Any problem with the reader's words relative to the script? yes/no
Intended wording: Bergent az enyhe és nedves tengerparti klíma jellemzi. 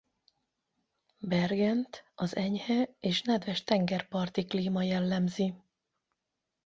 no